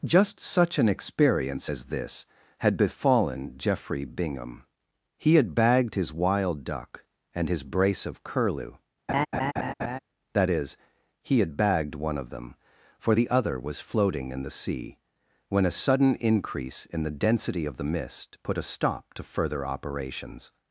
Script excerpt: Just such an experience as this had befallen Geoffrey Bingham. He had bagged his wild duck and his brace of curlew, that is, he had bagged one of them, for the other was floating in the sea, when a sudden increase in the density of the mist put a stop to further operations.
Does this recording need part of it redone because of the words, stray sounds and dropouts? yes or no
yes